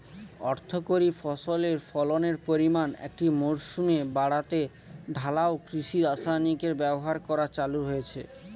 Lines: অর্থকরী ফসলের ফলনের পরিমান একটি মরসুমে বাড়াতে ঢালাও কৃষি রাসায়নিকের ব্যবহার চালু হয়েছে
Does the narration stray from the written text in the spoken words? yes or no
yes